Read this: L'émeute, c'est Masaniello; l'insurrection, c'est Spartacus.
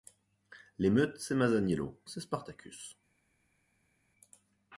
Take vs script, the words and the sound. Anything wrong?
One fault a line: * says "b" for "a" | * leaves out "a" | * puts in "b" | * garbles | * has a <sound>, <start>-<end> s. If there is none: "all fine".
* leaves out "l'insurrection"